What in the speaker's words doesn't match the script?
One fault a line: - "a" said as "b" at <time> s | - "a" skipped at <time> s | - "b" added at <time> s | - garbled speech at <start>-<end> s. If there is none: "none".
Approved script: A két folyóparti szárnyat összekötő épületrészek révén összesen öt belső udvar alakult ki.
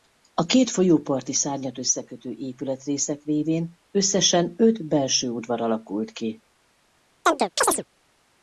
none